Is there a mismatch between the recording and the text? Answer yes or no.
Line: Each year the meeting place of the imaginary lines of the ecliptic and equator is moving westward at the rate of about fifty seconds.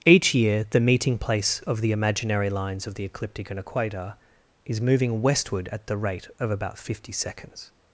no